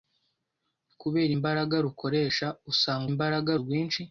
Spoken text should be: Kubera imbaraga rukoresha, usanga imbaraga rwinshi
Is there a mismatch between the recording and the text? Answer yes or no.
no